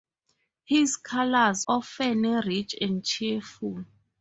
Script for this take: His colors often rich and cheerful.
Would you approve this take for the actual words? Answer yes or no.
yes